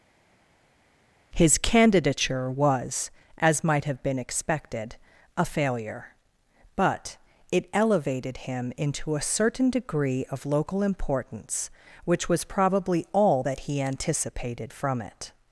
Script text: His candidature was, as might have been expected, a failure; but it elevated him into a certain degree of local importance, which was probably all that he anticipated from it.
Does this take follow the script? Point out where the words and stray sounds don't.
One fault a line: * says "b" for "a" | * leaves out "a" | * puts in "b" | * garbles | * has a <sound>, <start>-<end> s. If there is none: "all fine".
all fine